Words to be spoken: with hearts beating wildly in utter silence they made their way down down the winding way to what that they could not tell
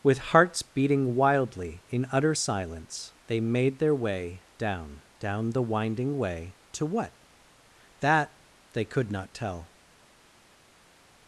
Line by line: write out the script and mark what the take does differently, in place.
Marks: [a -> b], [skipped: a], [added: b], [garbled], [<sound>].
with hearts beating wildly in utter silence they made their way down down the winding way to what that they could not tell